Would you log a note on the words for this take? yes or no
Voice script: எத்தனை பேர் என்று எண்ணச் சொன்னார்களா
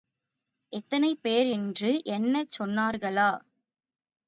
no